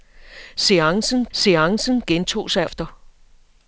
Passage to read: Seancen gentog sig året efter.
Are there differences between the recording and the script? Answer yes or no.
yes